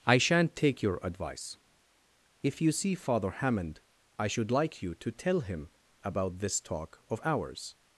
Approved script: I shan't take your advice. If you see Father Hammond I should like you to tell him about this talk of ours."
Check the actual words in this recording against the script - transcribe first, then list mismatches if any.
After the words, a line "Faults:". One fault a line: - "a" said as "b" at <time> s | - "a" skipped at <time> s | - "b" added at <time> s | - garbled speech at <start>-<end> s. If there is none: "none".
I shan't take your advice. If you see Father Hammond I should like you to tell him about this talk of ours."
Faults:
none